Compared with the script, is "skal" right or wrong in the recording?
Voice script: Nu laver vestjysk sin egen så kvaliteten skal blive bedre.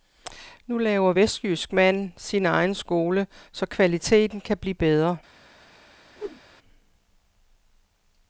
wrong